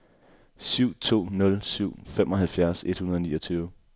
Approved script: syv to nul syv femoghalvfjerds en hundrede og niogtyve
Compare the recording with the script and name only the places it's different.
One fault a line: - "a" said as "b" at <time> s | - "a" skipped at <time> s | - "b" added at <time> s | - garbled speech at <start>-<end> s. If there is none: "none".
- "en" said as "et" at 2.8 s